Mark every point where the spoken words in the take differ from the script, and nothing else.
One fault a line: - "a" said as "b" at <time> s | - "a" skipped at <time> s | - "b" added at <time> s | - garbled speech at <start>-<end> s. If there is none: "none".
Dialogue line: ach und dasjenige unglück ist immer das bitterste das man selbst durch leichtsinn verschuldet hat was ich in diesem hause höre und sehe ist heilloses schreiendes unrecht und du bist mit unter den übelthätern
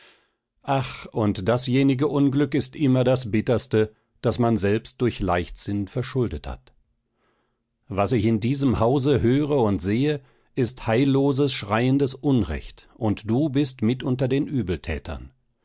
none